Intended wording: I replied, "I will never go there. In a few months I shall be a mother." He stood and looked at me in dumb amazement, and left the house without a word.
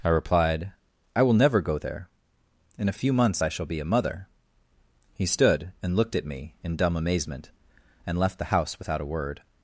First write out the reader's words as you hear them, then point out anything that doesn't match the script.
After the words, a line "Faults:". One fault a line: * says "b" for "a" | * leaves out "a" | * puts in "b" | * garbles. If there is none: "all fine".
I replied, "I will never go there. In a few months I shall be a mother." He stood and looked at me in dumb amazement, and left the house without a word.
Faults:
all fine